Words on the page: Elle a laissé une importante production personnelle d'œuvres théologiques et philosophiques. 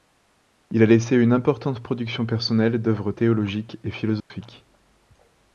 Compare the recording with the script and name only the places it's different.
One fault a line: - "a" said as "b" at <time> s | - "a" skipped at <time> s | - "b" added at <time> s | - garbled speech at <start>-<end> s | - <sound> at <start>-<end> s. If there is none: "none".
- "Elle" said as "Il" at 0.7 s
- dropout at 4.2-4.3 s